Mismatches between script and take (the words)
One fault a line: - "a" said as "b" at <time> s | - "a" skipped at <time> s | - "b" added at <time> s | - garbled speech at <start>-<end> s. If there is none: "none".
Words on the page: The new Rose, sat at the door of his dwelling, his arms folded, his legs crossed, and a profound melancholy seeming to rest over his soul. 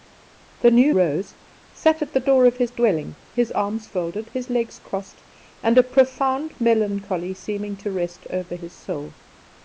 none